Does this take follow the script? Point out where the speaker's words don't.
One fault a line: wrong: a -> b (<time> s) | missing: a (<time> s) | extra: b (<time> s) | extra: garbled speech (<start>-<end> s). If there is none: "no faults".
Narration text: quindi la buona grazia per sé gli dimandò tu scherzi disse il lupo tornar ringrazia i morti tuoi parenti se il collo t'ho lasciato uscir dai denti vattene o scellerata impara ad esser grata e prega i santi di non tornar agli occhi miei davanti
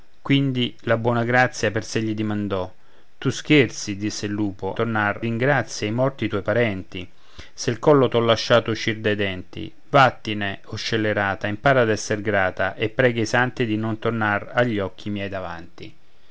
no faults